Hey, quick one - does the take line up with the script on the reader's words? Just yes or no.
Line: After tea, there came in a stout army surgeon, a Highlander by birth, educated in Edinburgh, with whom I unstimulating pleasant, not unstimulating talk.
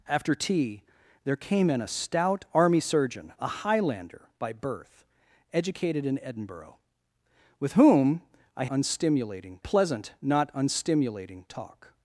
yes